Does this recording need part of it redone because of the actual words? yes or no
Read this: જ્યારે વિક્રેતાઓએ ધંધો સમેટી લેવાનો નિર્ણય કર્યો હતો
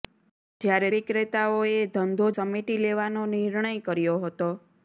no